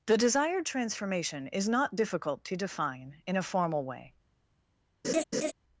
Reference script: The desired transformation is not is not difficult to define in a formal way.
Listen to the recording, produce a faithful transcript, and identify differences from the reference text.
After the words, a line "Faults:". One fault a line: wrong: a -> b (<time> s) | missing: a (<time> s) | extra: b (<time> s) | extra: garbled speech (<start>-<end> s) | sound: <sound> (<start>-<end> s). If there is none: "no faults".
The desired transformation is not difficult to define in a formal way.
Faults:
missing: is not (1.9 s)
sound: laugh (5.0-5.5 s)